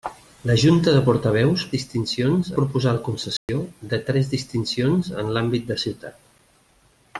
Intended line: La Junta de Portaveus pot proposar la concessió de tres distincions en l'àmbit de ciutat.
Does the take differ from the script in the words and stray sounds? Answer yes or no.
yes